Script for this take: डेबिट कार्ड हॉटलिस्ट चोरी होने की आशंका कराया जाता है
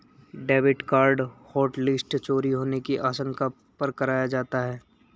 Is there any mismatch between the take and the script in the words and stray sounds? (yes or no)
yes